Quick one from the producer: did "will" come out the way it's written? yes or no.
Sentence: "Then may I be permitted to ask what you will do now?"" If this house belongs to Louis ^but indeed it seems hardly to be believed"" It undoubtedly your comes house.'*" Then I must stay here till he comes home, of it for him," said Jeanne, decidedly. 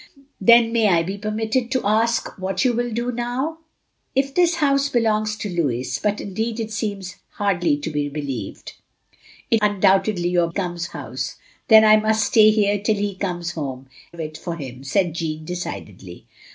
yes